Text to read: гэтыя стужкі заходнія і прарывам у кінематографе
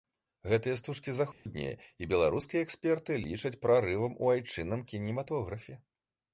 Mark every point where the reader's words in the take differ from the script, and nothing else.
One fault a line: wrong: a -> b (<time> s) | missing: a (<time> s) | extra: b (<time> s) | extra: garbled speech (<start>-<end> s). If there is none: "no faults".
extra: беларускія эксперты лічаць (2.1 s)
extra: айчынным (4.3 s)